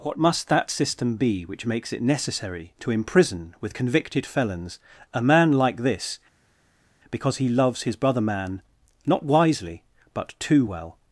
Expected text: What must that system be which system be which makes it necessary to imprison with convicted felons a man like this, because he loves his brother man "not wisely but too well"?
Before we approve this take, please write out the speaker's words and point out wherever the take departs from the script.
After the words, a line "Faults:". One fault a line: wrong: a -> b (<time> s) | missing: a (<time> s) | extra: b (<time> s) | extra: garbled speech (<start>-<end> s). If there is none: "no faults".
What must that system be which makes it necessary to imprison with convicted felons a man like this, because he loves his brother man "not wisely but too well"?
Faults:
missing: system be which (1.7 s)